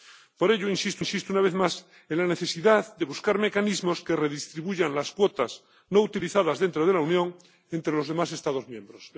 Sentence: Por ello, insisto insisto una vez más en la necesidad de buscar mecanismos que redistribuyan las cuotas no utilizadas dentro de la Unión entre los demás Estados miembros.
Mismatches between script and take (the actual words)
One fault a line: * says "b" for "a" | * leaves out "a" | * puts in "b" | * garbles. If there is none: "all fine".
all fine